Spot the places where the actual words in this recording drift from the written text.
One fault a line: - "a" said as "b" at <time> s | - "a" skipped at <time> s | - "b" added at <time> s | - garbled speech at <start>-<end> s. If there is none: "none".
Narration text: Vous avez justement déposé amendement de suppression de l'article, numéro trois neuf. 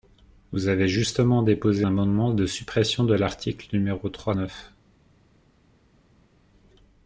none